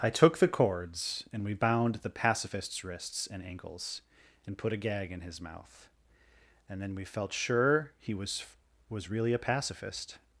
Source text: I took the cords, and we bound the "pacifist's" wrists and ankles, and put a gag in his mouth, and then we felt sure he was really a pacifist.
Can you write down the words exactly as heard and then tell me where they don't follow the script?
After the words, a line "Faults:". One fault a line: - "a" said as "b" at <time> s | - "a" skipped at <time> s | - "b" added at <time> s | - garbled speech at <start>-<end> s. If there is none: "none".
I took the cords, and we bound the "pacifist's" wrists and ankles, and put a gag in his mouth, and then we felt sure he was was really a pacifist.
Faults:
- "was" added at 8.9 s